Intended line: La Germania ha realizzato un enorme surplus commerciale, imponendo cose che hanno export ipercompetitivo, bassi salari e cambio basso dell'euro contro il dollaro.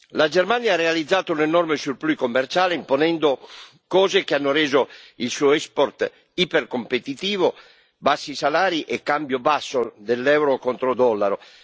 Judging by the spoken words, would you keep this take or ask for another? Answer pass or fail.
fail